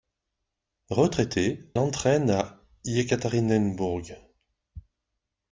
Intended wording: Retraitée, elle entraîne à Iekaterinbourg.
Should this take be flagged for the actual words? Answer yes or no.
yes